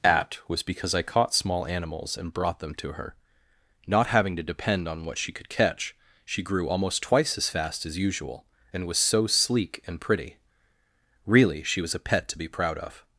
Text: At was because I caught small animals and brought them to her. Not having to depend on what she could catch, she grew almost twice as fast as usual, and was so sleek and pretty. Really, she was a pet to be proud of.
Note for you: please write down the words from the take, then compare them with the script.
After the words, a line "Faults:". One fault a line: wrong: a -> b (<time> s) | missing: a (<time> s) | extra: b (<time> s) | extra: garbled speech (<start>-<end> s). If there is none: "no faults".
At was because I caught small animals and brought them to her. Not having to depend on what she could catch, she grew almost twice as fast as usual, and was so sleek and pretty. Really, she was a pet to be proud of.
Faults:
no faults